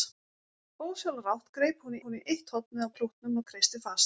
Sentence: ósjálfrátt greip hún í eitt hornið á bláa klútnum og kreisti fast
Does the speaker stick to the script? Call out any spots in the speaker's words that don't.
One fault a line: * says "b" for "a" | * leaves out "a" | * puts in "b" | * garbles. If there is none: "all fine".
* puts in "hún"
* leaves out "bláa"